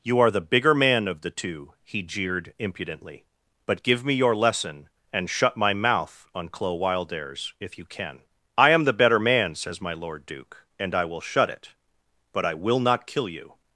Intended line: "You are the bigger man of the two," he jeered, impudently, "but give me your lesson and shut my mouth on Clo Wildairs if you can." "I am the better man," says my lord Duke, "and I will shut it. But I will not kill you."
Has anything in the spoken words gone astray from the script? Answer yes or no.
no